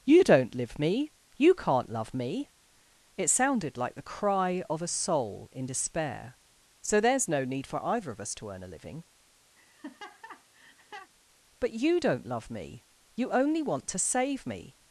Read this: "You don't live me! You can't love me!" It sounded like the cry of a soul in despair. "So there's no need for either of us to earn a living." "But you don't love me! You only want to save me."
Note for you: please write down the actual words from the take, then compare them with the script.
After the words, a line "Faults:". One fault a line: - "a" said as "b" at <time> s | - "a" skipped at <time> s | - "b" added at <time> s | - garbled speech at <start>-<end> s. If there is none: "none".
"You don't live me! You can't love me!" It sounded like the cry of a soul in despair. "So there's no need for either of us to earn a living." "But you don't love me! You only want to save me."
Faults:
none